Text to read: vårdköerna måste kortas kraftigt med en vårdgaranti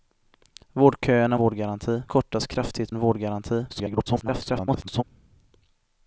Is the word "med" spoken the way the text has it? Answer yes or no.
no